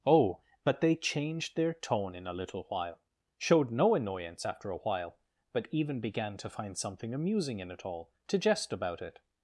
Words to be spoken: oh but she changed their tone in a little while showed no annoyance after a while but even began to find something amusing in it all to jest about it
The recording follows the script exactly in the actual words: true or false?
false